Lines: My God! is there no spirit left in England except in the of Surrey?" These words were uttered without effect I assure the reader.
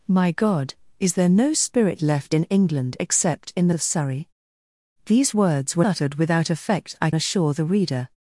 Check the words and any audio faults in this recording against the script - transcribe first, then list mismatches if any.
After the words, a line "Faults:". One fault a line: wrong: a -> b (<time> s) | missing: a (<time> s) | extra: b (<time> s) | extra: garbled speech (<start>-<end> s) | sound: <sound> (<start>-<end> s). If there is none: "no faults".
My God! is there no spirit left in England except in the of Surrey?" These words were uttered without effect I assure the reader.
Faults:
no faults